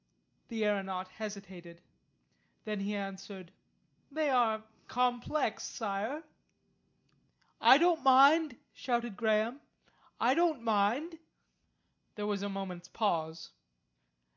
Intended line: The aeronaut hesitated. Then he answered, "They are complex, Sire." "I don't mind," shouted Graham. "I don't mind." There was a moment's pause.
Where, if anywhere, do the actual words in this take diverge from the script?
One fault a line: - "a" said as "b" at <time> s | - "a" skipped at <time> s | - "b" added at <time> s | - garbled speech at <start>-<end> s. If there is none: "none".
none